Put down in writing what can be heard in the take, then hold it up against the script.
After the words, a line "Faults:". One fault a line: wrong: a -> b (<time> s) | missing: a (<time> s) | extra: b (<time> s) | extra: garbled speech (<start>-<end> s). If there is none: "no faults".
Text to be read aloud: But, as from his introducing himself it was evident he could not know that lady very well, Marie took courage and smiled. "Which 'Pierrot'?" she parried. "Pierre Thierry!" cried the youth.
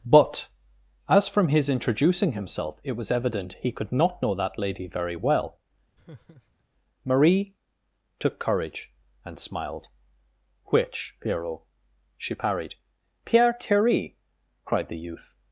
But, as from his introducing himself it was evident he could not know that lady very well, Marie took courage and smiled. "Which 'Pierrot'?" she parried. "Pierre Thierry!" cried the youth.
Faults:
no faults